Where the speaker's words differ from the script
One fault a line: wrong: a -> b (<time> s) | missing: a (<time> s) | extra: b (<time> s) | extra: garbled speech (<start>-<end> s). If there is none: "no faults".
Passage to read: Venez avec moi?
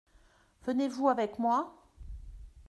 extra: vous (0.9 s)